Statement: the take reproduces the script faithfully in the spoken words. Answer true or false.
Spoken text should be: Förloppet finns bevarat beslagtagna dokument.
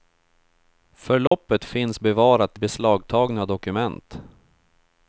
true